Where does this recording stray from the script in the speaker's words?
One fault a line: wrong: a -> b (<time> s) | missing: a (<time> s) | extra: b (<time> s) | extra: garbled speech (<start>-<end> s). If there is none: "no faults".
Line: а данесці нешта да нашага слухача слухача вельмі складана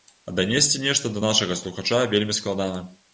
missing: слухача (2.0 s)